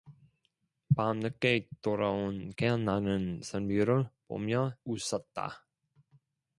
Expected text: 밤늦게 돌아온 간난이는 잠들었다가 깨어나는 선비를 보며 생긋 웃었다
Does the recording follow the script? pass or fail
fail